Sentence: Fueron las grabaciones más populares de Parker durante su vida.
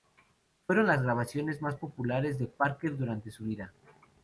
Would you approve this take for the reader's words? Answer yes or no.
yes